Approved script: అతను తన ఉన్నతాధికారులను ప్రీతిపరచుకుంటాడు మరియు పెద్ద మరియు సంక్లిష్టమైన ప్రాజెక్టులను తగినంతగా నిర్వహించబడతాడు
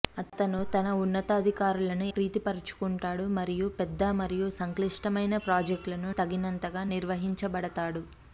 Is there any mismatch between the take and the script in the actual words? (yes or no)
no